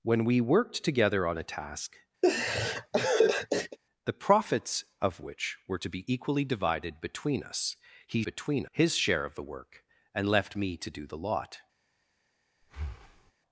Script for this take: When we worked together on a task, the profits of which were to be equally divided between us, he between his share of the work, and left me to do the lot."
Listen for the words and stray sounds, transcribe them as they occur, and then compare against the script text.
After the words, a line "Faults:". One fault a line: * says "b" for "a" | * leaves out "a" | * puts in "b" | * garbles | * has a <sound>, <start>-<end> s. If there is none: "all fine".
When we worked together on a task, the profits of which were to be equally divided between us, he between his share of the work, and left me to do the lot."
Faults:
* has a laugh, 2.2-3.8 s
* has a breath, 12.6-13.3 s